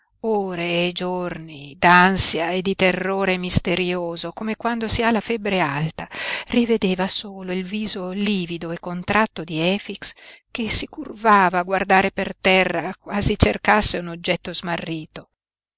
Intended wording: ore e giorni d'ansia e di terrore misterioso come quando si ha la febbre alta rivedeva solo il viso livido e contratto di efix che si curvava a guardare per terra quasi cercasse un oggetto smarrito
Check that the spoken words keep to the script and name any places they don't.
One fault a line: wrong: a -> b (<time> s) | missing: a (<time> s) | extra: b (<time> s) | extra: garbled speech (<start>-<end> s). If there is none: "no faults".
no faults